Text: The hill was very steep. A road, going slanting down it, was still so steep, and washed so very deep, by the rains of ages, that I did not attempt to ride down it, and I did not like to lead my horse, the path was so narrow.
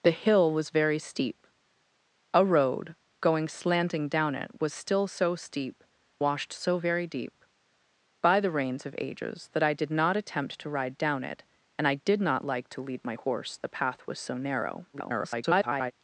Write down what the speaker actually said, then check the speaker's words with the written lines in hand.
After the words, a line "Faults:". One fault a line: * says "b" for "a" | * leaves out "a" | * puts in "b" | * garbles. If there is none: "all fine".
The hill was very steep. A road, going slanting down it, was still so steep, washed so very deep, by the rains of ages, that I did not attempt to ride down it, and I did not like to lead my horse, the path was so narrow. [garbled]
Faults:
* leaves out "and"
* garbles